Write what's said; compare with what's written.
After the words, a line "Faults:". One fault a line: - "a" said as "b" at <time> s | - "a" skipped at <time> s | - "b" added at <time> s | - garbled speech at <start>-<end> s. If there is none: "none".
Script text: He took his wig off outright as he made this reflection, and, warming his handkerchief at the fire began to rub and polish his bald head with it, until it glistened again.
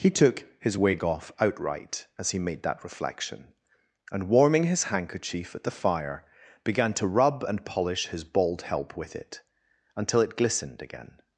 He took his wig off outright as he made that reflection, and, warming his handkerchief at the fire began to rub and polish his bald help with it, until it glistened again.
Faults:
- "this" said as "that" at 2.6 s
- "head" said as "help" at 8.6 s